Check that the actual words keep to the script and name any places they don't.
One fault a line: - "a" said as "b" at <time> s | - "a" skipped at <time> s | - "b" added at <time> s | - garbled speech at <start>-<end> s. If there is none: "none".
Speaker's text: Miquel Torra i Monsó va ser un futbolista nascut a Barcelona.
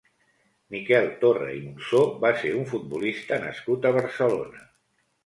none